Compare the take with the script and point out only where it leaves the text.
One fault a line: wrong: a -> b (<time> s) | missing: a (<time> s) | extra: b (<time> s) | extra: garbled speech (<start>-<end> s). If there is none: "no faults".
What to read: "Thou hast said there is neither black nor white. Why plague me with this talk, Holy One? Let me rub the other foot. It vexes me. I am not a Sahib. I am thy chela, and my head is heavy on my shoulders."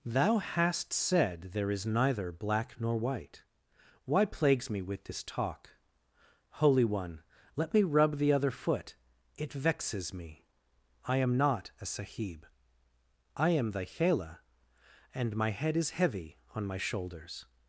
wrong: plague -> plagues (4.2 s)